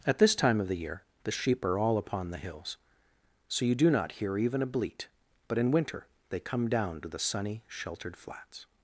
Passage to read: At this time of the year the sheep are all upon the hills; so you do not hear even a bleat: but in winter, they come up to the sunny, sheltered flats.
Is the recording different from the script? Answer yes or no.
yes